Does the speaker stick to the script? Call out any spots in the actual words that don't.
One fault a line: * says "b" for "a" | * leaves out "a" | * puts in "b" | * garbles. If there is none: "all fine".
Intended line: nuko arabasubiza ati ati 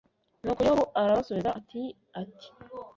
* puts in "yobu"